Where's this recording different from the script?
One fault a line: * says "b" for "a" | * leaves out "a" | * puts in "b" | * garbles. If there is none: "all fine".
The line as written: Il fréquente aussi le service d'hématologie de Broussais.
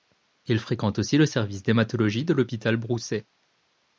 * puts in "l'Hôpital"